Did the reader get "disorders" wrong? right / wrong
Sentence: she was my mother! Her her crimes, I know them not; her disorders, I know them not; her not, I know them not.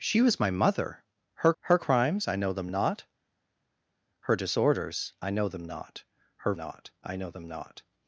right